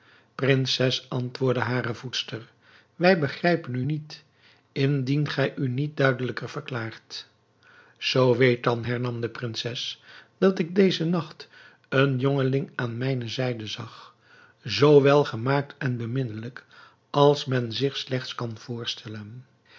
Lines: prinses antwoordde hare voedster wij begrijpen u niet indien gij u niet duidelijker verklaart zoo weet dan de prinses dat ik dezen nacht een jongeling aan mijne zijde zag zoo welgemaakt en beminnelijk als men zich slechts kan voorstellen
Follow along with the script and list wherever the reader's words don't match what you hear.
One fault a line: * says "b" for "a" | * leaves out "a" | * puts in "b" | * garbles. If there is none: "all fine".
* puts in "hernam"